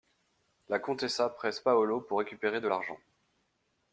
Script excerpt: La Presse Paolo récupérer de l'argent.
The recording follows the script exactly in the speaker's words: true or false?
false